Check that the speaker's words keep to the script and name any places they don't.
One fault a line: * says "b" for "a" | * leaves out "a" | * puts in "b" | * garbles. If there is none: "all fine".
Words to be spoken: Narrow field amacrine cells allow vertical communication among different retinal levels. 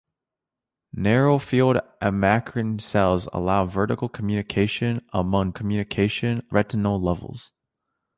* says "communication" for "different"